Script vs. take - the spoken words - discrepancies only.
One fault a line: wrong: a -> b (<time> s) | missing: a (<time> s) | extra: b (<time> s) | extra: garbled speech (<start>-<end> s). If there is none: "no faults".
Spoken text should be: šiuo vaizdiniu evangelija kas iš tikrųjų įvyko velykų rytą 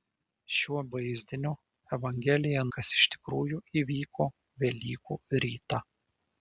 no faults